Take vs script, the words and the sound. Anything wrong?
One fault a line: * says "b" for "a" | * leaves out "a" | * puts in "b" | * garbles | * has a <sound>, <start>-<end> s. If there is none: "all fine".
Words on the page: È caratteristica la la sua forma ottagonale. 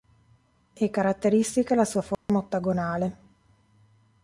* leaves out "la"
* has a dropout, 2.1-2.3 s